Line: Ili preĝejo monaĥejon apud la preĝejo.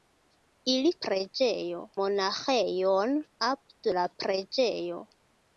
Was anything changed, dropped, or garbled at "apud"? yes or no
no